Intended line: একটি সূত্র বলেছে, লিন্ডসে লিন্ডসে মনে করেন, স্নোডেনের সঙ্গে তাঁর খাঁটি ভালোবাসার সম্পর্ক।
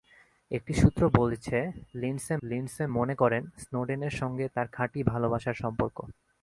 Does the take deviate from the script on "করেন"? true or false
false